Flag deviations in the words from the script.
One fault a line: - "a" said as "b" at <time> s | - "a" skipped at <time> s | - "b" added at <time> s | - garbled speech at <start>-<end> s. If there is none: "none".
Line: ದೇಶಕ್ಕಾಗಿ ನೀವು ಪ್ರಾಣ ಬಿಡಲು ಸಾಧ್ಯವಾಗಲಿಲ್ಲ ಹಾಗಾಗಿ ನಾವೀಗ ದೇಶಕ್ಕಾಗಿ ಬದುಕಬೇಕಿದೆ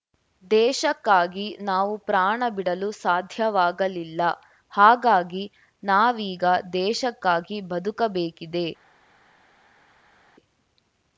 - "ನೀವು" said as "ನಾವು" at 1.6 s